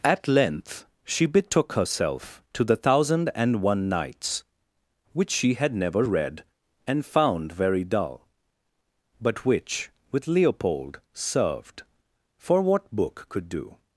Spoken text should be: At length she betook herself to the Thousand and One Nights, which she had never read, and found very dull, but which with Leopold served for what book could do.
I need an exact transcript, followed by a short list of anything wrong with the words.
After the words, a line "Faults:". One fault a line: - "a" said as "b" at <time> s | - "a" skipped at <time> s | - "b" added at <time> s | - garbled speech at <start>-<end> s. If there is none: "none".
At length she betook herself to the Thousand and One Nights, which she had never read, and found very dull, but which with Leopold served for what book could do.
Faults:
none